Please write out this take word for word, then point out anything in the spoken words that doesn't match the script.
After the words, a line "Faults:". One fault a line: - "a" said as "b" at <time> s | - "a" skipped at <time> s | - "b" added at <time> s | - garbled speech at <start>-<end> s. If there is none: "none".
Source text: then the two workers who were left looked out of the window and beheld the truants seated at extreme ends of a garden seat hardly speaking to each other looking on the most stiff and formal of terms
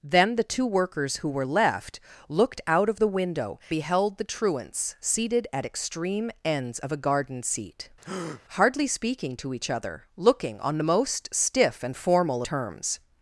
then the two workers who were left looked out of the window beheld the truants seated at extreme ends of a garden seat hardly speaking to each other looking on the most stiff and formal terms
Faults:
- "and" skipped at 3.6 s
- "of" skipped at 12.4 s